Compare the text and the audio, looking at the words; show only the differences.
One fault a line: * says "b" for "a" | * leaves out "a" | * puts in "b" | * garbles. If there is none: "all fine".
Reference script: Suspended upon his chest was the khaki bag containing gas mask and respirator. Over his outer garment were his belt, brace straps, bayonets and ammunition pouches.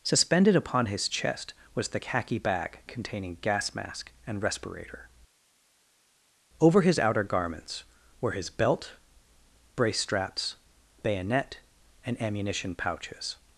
* says "garments" for "garment"
* says "bayonet" for "bayonets"